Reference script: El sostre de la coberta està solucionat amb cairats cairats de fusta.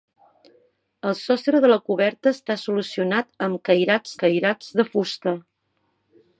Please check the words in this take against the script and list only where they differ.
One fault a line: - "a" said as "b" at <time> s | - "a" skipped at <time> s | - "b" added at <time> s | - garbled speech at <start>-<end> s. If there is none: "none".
none